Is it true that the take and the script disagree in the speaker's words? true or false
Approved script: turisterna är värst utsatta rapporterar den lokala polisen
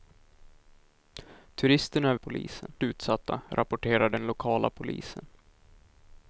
true